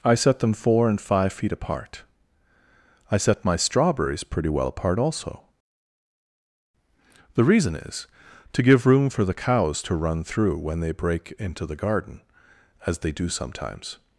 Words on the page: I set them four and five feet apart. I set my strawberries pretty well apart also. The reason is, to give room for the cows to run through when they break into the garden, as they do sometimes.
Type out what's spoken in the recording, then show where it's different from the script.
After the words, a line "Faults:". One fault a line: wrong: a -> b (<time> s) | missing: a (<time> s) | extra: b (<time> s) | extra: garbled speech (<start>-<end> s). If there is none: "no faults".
I set them four and five feet apart. I set my strawberries pretty well apart also. The reason is, to give room for the cows to run through when they break into the garden, as they do sometimes.
Faults:
no faults